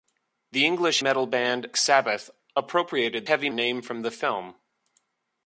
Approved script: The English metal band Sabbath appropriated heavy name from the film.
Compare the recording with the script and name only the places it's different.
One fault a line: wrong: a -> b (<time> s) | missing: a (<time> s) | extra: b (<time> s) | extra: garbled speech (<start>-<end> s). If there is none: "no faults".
no faults